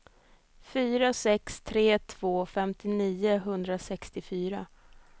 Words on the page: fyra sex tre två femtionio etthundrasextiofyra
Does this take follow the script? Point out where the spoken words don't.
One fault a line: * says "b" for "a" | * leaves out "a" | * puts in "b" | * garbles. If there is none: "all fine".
all fine